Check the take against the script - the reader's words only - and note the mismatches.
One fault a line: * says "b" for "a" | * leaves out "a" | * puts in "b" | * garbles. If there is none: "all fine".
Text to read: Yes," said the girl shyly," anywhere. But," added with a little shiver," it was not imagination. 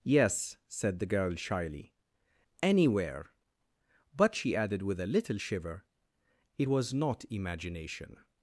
* puts in "she"